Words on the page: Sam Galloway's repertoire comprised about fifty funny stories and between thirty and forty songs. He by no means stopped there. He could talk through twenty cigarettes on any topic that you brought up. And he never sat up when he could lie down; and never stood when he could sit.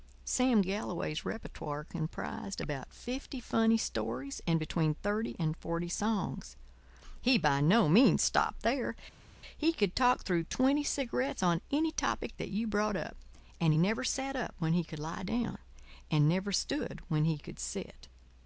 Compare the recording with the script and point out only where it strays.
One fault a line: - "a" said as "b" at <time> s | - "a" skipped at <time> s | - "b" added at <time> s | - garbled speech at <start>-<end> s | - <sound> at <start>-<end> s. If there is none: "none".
none